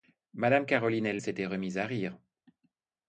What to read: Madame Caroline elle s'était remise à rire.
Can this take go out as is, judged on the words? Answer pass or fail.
pass